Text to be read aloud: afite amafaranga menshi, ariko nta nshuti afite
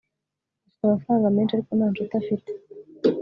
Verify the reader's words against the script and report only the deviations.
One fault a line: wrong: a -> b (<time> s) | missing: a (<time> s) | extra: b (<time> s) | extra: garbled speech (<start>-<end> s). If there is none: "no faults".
no faults